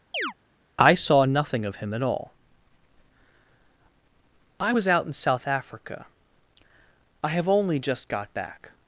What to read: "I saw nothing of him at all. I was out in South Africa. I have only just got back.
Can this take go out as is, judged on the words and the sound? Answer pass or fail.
fail